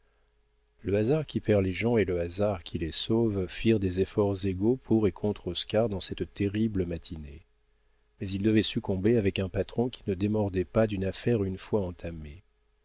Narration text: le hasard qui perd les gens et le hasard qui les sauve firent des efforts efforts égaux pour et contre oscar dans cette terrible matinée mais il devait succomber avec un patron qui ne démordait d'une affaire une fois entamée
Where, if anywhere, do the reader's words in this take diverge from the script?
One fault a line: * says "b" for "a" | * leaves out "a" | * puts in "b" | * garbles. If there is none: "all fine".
* leaves out "efforts"
* puts in "pas"